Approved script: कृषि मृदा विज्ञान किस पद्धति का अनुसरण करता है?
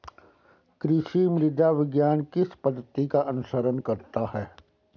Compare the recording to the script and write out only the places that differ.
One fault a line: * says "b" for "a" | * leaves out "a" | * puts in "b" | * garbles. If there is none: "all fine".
all fine